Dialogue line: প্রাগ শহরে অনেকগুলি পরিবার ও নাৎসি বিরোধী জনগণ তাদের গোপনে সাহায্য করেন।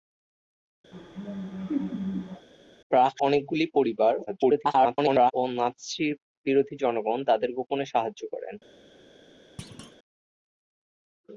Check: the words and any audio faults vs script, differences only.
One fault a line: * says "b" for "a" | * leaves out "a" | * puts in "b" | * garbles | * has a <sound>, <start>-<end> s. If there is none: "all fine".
* has a laugh, 0.9-2.5 s
* leaves out "শহরে"
* garbles
* has a thud, 9.6-10.0 s